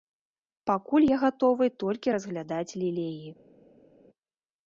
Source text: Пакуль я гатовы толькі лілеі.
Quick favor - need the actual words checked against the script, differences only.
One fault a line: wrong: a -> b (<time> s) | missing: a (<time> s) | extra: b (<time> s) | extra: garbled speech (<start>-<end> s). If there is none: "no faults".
extra: разглядаць (2.1 s)